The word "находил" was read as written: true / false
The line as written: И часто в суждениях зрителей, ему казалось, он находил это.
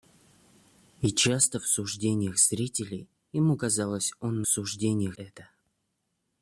false